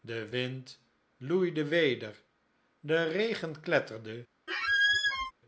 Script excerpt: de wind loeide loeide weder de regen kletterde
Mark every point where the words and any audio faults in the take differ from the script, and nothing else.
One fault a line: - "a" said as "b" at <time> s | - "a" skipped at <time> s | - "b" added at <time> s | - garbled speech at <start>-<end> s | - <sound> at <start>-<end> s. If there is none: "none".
- "loeide" skipped at 1.6 s
- squeak at 4.5-5.3 s